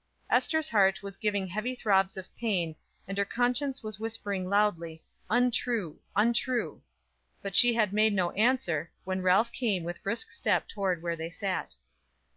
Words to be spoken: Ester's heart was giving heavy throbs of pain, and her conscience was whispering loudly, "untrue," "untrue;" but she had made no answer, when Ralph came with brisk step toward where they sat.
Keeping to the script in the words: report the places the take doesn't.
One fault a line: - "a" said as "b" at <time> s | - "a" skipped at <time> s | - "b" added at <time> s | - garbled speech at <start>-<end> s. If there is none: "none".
none